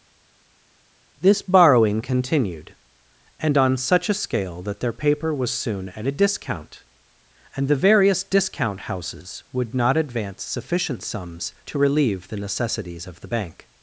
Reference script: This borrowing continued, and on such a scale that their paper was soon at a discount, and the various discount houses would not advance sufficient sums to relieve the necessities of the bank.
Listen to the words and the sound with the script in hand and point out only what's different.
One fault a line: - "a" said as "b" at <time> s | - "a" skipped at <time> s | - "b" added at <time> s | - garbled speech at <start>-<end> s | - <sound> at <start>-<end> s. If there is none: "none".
none